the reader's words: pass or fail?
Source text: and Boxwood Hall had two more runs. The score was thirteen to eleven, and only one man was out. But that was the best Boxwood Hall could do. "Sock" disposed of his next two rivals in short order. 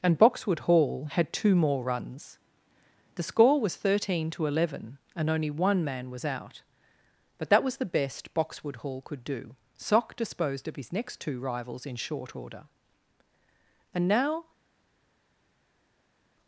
fail